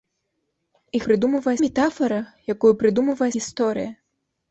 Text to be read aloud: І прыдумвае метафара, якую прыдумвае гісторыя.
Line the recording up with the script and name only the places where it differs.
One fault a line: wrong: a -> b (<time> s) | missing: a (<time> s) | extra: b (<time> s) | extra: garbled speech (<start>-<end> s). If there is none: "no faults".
no faults